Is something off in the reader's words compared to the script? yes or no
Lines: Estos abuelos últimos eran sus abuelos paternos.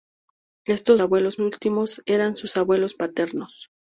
no